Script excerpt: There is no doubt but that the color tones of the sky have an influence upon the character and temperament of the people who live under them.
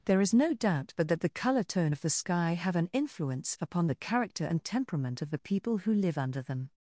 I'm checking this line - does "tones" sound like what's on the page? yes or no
no